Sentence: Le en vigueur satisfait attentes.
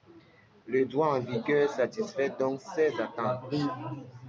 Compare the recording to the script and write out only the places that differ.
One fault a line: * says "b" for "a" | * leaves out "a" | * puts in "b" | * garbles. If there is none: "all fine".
* puts in "droit"
* puts in "donc ces"